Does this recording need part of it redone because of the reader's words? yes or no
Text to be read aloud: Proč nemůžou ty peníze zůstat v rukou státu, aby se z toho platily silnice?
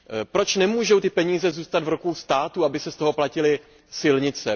no